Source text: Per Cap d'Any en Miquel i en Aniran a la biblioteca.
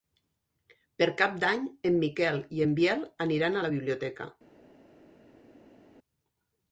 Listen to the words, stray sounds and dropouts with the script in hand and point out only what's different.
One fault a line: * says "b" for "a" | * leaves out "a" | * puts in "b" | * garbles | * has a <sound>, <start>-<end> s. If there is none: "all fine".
* puts in "Biel"